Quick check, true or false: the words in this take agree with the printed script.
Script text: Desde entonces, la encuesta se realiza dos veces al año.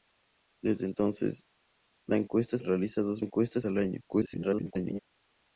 false